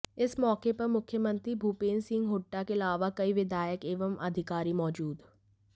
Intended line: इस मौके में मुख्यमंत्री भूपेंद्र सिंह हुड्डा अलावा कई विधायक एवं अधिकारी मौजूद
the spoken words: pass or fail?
fail